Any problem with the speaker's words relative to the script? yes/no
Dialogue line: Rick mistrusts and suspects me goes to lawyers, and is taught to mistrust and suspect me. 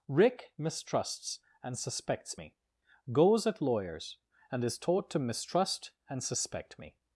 yes